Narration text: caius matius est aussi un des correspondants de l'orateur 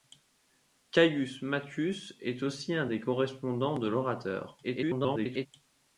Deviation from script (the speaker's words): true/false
true